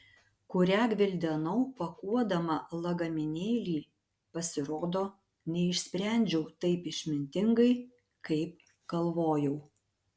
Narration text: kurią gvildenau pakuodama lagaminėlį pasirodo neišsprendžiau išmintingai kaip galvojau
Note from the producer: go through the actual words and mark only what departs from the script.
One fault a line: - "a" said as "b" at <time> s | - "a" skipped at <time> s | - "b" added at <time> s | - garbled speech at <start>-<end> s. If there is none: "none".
- "taip" added at 6.7 s